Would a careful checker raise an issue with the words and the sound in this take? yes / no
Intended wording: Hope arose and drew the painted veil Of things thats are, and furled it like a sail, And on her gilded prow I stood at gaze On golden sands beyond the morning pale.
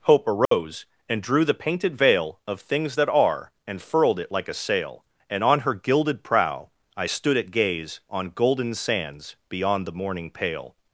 yes